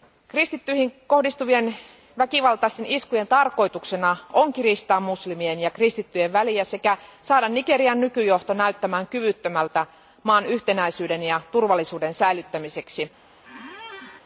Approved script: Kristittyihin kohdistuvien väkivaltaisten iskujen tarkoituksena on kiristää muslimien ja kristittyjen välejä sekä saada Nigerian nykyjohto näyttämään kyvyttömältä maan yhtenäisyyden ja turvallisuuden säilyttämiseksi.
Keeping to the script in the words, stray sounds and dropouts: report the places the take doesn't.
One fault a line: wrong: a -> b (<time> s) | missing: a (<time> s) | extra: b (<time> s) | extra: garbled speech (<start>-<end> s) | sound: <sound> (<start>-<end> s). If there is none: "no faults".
sound: squeak (13.4-14.2 s)